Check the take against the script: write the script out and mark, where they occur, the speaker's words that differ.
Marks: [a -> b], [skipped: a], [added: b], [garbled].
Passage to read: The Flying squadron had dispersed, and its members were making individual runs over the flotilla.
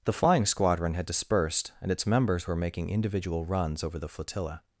The Flying squadron had dispersed, and its members were making individual runs over the flotilla.